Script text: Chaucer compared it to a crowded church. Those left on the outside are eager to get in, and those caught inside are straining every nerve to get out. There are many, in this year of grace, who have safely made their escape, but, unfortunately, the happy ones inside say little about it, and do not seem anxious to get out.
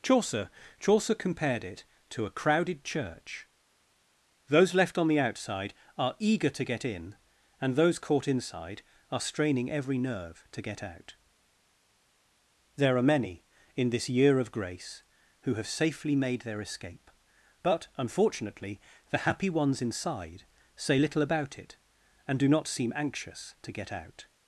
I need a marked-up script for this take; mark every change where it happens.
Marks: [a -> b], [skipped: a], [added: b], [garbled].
Chaucer [added: chaucer] compared it to a crowded church. Those left on the outside are eager to get in, and those caught inside are straining every nerve to get out. There are many, in this year of grace, who have safely made their escape, but, unfortunately, the happy ones inside say little about it, and do not seem anxious to get out.